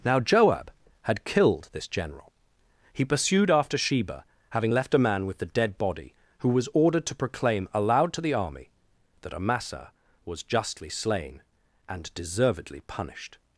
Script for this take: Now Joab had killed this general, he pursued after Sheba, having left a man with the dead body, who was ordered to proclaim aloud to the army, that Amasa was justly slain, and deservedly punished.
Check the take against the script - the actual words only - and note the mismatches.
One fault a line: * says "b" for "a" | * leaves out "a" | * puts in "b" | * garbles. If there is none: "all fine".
all fine